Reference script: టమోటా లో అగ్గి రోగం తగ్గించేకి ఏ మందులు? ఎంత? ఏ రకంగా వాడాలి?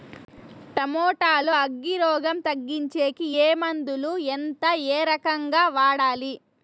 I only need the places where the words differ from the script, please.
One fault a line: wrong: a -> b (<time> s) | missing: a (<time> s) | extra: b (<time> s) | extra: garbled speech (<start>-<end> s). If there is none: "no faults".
no faults